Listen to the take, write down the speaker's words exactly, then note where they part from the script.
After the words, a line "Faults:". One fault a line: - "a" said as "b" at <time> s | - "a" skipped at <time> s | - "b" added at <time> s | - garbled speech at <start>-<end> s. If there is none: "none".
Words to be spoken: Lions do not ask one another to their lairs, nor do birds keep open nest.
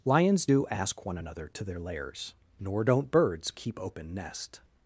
Lions do ask one another to their lairs, nor don't birds keep open nest.
Faults:
- "not" skipped at 0.6 s
- "do" said as "don't" at 2.8 s